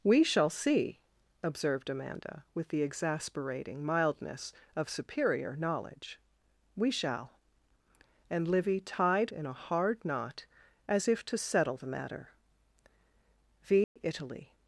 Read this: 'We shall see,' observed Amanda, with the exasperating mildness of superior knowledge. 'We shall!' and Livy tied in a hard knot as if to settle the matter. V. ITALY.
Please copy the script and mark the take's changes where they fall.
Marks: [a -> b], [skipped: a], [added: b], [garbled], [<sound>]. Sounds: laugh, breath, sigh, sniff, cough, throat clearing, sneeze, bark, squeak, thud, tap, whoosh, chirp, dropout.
'We shall see,' observed Amanda, with the exasperating mildness of superior knowledge. 'We shall!' and Livy tied in a hard knot as if to settle the matter. V. [dropout] ITALY.